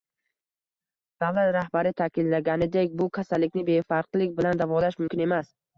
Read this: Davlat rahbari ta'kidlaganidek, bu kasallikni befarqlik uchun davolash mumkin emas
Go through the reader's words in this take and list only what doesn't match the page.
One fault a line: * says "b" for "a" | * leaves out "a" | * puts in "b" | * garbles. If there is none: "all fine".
* says "bilan" for "uchun"